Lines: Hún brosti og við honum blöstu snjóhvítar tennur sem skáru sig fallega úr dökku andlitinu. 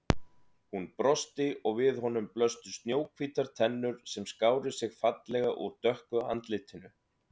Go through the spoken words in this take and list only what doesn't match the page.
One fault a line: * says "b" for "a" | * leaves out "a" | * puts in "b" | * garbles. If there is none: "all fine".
all fine